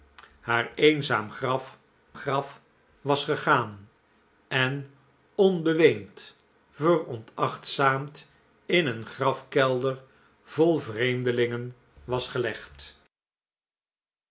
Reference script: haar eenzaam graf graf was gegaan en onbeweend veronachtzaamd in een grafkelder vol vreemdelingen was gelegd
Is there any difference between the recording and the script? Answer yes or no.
no